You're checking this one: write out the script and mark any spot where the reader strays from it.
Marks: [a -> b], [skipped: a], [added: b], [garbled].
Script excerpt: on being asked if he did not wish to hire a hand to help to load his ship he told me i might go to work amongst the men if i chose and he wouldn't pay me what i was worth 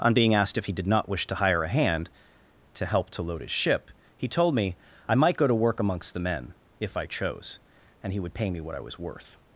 on being asked if he did not wish to hire a hand to help to load his ship he told me i might go to work amongst the men if i chose and he [wouldn't -> would] pay me what i was worth